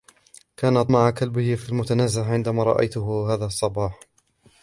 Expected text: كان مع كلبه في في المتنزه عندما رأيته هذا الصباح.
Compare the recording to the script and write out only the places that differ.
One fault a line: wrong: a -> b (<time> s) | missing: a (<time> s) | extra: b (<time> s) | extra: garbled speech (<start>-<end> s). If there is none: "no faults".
no faults